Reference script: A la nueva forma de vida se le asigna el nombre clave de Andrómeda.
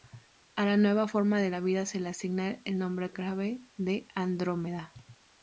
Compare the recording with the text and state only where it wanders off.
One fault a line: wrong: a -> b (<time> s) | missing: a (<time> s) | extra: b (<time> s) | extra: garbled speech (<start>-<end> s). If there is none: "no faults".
no faults